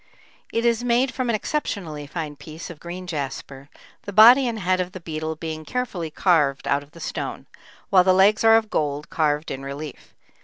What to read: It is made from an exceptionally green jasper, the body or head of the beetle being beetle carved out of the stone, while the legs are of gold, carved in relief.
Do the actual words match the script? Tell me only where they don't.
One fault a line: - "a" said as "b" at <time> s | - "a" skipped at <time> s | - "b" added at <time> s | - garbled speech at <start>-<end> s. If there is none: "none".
- "fine piece of" added at 2.1 s
- "or" said as "and" at 4.5 s
- "beetle" said as "carefully" at 5.6 s